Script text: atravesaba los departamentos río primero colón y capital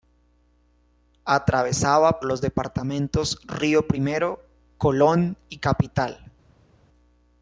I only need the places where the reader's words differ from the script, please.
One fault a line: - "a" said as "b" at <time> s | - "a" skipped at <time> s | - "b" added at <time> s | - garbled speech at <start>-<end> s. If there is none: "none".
none